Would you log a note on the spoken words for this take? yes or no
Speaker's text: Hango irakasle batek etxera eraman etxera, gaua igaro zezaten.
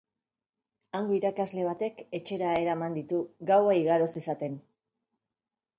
yes